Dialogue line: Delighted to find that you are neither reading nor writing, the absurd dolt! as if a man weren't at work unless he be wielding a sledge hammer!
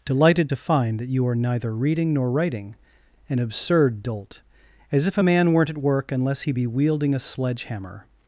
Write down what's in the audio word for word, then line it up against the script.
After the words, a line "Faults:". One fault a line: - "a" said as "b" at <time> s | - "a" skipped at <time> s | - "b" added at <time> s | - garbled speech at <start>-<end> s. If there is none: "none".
Delighted to find that you are neither reading nor writing, an absurd dolt! as if a man weren't at work unless he be wielding a sledge hammer!
Faults:
- "the" said as "an" at 3.3 s